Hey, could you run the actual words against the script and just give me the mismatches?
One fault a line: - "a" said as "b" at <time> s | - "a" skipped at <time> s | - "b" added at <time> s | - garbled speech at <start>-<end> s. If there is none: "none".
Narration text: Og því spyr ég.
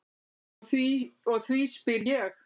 none